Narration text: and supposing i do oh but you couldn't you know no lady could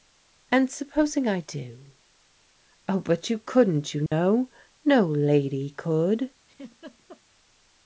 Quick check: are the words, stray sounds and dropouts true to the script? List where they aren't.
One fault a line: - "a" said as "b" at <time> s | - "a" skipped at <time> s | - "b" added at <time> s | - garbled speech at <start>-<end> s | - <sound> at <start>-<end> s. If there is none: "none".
- dropout at 4.1-4.1 s
- laugh at 6.5-7.2 s